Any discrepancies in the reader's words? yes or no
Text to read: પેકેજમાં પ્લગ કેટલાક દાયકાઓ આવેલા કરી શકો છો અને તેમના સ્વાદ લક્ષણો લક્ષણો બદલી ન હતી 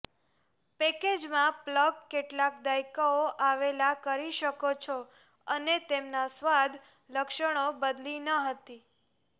yes